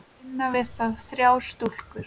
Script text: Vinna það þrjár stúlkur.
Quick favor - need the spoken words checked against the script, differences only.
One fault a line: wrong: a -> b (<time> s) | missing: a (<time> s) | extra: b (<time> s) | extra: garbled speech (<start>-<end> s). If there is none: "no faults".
extra: við (0.5 s)